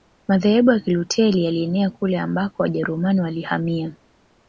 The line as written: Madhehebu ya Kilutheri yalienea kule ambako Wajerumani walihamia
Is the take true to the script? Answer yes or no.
yes